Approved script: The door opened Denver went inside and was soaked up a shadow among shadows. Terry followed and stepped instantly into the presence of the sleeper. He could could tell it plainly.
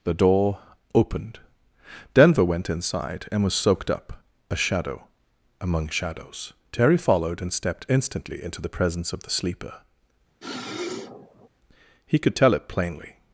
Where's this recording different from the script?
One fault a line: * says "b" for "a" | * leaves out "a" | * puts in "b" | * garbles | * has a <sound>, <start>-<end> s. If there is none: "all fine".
* has a sniff, 10.4-11.5 s
* leaves out "could"